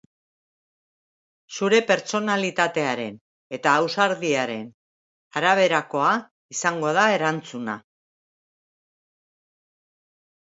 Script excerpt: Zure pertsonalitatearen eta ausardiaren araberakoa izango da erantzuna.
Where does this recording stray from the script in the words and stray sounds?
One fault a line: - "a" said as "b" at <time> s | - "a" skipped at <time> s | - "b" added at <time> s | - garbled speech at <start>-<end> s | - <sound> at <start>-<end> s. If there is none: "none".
none